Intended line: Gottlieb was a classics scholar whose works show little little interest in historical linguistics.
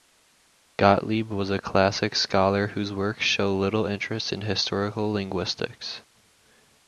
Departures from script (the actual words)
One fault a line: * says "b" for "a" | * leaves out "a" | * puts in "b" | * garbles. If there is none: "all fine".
* leaves out "little"